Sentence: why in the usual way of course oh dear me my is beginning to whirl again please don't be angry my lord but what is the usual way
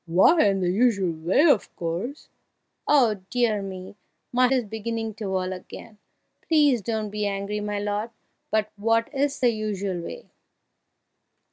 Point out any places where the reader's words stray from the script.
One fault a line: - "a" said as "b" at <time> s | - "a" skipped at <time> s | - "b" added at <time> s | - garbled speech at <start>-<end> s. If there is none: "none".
none